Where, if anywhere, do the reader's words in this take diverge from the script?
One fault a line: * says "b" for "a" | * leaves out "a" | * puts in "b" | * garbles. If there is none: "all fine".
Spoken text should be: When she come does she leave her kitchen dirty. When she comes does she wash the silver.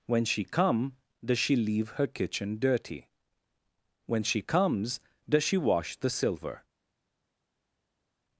all fine